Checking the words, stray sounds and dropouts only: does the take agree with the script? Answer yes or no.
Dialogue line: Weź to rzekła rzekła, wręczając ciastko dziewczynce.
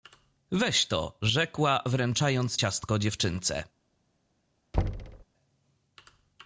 no